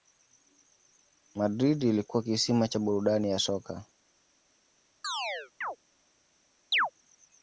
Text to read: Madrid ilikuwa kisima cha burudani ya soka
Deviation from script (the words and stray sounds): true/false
true